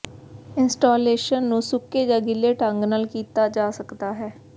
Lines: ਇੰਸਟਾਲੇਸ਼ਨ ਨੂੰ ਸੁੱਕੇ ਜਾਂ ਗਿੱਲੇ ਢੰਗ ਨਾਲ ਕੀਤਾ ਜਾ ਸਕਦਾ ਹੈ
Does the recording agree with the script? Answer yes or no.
yes